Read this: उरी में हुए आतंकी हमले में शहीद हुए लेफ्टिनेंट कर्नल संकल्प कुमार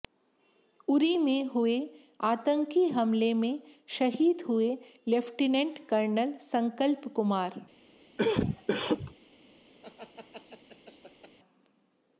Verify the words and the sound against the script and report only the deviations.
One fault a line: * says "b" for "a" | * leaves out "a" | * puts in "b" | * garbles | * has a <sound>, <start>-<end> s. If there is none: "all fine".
* has a cough, 8.2-9.1 s
* has a laugh, 9.8-11.4 s